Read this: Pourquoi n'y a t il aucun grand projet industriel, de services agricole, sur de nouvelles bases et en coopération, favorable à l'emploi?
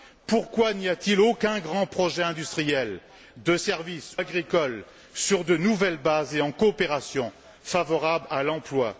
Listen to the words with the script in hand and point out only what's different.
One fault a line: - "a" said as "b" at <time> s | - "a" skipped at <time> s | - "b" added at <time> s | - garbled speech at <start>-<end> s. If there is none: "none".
none